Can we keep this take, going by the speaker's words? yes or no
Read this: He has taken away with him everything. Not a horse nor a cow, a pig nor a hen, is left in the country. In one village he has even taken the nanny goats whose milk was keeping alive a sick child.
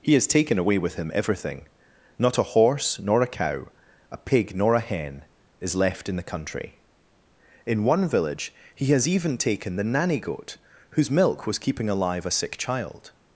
no